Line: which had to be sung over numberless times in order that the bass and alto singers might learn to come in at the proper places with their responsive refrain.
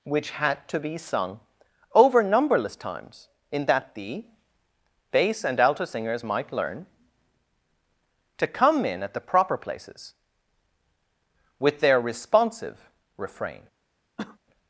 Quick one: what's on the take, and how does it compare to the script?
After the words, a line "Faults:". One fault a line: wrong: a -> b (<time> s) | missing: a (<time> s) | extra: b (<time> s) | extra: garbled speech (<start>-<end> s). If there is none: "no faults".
which had to be sung over numberless times in that the bass and alto singers might learn to come in at the proper places with their responsive refrain.
Faults:
missing: order (3.7 s)